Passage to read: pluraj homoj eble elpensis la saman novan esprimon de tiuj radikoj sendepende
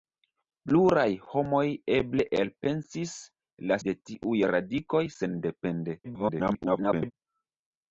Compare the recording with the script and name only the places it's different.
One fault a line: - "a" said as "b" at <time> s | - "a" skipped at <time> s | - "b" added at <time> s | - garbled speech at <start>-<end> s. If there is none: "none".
- "saman novan esprimon" skipped at 3.8 s
- garbled speech at 6.0-7.1 s